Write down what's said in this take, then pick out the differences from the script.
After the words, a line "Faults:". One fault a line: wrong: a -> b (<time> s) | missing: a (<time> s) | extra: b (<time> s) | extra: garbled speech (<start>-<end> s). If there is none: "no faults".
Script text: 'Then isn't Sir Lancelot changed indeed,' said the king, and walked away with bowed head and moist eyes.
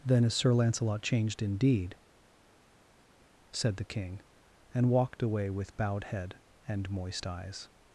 'Then is Sir Lancelot changed indeed,' said the king, and walked away with bowed head and moist eyes.
Faults:
wrong: isn't -> is (0.2 s)